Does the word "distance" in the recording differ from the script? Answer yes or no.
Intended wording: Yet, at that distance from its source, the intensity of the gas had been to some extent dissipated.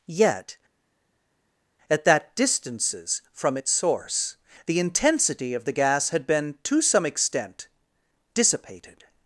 yes